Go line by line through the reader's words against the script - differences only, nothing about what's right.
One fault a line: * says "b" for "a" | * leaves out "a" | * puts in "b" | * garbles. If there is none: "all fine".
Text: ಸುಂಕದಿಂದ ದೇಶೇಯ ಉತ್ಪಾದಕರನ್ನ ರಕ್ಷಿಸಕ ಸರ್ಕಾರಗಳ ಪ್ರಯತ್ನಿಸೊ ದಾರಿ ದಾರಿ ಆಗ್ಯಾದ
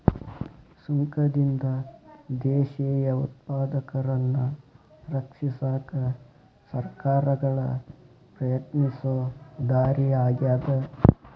* leaves out "ದಾರಿ"